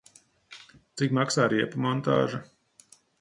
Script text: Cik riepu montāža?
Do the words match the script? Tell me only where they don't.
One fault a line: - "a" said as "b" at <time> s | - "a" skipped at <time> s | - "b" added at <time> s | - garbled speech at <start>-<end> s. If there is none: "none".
- "maksā" added at 1.2 s